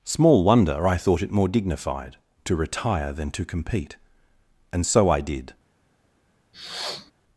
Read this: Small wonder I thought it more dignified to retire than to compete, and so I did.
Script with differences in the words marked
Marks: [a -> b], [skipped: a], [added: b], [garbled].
Small wonder I thought it more dignified to retire than to compete, and so I did.